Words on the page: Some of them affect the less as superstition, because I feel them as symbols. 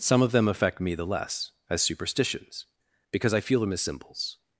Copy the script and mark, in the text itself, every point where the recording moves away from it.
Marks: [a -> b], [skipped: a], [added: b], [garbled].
Some of them affect [added: me] the less as [superstition, -> superstitions] because I feel them as symbols.